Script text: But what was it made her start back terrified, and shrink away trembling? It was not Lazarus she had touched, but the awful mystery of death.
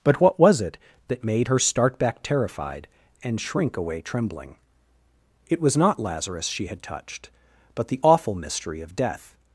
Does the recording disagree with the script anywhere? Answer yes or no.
yes